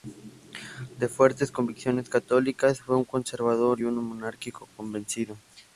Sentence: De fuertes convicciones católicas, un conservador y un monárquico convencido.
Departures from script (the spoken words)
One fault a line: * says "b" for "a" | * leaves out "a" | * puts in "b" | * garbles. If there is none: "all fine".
* puts in "fue"